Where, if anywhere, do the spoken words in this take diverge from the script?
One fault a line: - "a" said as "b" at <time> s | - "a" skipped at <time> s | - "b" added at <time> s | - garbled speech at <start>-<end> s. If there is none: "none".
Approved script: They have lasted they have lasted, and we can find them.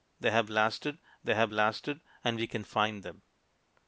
none